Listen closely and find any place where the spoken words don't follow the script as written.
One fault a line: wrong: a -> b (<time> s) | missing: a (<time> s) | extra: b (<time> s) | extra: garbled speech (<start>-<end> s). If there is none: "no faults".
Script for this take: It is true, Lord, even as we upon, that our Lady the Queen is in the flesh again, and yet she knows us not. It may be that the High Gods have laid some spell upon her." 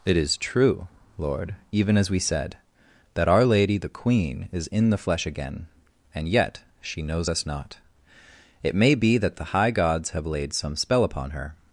wrong: upon -> said (2.2 s)